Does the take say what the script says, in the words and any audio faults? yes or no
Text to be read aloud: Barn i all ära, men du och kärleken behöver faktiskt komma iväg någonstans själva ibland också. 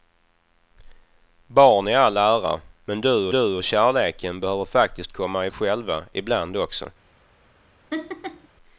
no